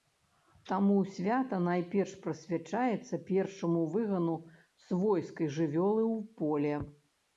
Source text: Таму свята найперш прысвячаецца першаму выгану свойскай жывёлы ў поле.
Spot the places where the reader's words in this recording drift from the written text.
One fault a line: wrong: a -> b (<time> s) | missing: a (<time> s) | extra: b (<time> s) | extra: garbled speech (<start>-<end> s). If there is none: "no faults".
no faults